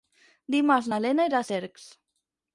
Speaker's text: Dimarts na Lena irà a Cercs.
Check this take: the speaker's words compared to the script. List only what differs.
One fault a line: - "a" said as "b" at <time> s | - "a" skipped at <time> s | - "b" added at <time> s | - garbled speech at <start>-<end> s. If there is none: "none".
none